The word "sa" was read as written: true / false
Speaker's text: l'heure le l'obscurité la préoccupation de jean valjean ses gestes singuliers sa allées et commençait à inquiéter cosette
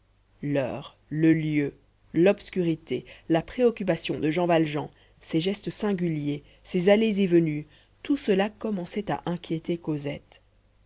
false